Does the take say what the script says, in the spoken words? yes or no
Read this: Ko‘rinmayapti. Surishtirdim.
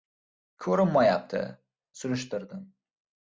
yes